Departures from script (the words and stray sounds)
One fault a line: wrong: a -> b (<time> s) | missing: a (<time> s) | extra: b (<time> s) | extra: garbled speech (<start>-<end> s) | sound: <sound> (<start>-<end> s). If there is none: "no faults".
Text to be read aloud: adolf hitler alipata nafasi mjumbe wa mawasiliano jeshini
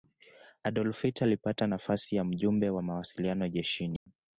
extra: ya (2.1 s)
sound: dropout (4.0-4.1 s)